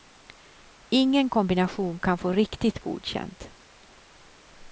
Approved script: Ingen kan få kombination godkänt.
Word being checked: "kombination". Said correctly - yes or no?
no